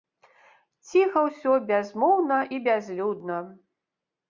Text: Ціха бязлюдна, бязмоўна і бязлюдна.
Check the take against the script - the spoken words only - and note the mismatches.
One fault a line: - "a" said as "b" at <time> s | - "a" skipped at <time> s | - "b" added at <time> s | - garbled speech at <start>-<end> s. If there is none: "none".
- "бязлюдна" said as "ўсё" at 1.3 s